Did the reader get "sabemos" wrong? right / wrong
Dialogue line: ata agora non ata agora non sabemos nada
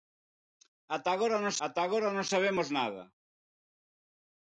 right